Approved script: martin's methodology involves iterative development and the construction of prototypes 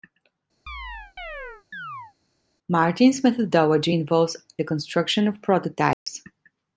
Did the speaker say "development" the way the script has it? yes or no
no